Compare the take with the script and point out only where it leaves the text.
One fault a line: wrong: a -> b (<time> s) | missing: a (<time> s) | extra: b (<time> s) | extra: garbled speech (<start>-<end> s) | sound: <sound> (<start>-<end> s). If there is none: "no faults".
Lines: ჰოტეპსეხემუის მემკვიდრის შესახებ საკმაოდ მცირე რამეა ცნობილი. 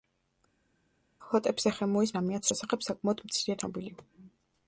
wrong: მემკვიდრის -> რამეა (2.2 s)
missing: რამეა (3.6 s)